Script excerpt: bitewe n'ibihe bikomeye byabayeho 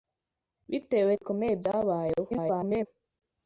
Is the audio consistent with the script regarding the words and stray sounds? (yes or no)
no